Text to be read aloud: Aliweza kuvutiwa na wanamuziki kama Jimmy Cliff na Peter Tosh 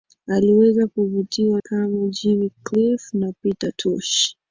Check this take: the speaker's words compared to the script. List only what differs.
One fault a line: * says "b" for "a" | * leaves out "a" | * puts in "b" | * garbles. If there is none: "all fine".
* leaves out "na wanamuziki"